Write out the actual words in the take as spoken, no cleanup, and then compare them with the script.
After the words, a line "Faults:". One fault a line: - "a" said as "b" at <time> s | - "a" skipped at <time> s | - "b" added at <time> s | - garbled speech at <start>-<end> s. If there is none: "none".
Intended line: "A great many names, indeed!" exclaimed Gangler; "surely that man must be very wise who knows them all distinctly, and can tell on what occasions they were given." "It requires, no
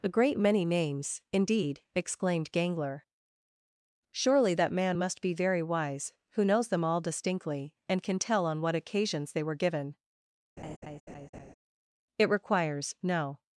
"A great many names, indeed!" exclaimed Gangler; "surely that man must be very wise who knows them all distinctly, and can tell on what occasions they were given." "It requires, no
Faults:
none